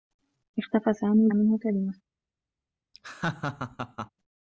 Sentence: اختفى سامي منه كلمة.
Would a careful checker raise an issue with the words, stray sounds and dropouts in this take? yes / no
yes